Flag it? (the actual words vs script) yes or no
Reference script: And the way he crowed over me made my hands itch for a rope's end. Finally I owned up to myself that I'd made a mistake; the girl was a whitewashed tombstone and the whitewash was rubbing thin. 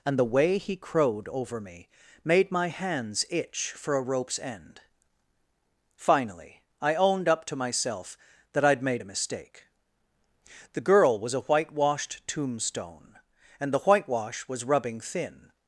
no